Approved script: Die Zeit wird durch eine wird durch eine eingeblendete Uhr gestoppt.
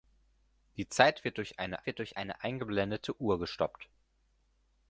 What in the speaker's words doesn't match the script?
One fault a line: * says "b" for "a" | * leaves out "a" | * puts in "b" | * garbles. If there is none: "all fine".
all fine